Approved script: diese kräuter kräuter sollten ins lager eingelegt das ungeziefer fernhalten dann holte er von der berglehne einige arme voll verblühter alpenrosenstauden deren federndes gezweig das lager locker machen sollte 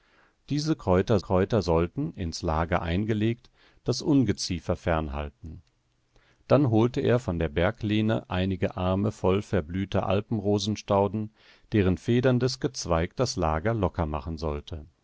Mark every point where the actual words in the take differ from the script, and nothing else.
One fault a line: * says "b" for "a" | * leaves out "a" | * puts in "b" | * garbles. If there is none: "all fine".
all fine